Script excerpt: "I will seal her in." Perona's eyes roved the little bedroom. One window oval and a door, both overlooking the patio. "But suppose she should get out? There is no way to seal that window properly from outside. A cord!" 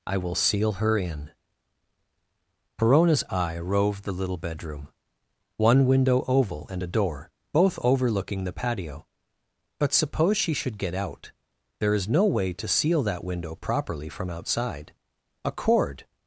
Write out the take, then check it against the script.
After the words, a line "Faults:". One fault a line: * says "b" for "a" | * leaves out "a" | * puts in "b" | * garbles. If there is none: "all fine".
"I will seal her in." Perona's eye roved the little bedroom. One window oval and a door, both overlooking the patio. "But suppose she should get out? There is no way to seal that window properly from outside. A cord!"
Faults:
* says "eye" for "eyes"